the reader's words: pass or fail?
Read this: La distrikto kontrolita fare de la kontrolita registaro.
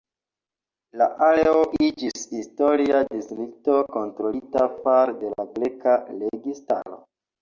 fail